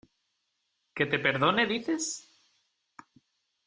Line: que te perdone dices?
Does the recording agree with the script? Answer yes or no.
yes